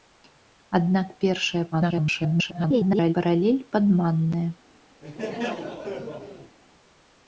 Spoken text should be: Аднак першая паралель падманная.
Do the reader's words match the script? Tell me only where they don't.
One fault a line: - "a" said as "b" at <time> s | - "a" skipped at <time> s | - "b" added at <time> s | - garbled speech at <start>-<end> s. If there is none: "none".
- garbled speech at 1.7-3.1 s